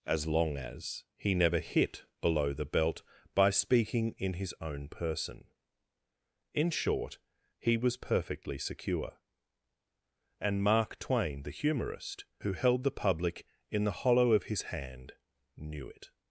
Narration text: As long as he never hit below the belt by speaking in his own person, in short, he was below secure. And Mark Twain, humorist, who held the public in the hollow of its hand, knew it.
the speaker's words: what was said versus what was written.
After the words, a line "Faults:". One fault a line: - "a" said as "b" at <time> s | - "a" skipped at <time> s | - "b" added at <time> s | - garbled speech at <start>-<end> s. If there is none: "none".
As long as he never hit below the belt by speaking in his own person, in short, he was perfectly secure. And Mark Twain, the humorist, who held the public in the hollow of his hand, knew it.
Faults:
- "below" said as "perfectly" at 8.0 s
- "the" added at 11.4 s
- "its" said as "his" at 14.4 s